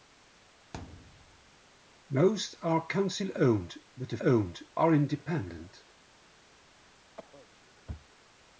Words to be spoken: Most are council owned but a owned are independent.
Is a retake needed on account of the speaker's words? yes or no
no